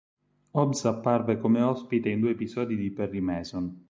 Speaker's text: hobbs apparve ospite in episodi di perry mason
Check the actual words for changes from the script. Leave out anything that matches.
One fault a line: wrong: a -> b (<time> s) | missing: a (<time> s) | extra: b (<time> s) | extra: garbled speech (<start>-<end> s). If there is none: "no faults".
extra: come (1.4 s)
extra: due (2.2 s)